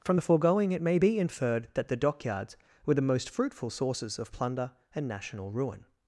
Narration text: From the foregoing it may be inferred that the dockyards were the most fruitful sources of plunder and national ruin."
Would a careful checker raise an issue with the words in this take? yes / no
no